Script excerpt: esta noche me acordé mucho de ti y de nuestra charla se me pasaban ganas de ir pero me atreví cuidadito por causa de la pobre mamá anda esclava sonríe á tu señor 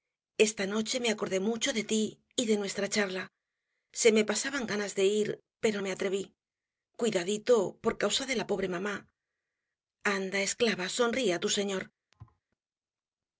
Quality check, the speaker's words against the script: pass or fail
pass